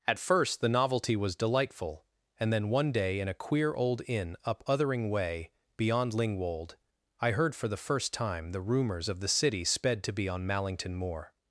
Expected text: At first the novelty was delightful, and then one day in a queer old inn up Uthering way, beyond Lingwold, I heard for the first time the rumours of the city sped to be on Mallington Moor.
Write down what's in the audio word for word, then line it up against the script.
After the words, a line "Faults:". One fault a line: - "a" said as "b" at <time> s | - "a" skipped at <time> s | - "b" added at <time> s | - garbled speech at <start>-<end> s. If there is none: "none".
At first the novelty was delightful, and then one day in a queer old inn up Uthering way, beyond Lingwold, I heard for the first time the rumours of the city sped to be on Mallington Moor.
Faults:
none